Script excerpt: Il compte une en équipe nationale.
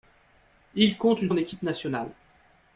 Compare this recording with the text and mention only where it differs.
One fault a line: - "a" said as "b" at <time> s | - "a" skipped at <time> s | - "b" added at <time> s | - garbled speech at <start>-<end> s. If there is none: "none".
none